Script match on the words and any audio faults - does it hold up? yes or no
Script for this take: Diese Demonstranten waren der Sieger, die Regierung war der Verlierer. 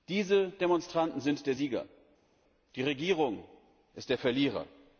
no